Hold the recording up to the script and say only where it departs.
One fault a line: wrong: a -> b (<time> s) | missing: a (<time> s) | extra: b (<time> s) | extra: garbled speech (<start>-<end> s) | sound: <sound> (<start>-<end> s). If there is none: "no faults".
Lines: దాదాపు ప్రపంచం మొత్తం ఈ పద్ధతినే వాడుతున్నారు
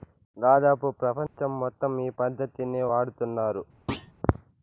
sound: dropout (1.3-1.4 s)
sound: thud (3.9-4.1 s)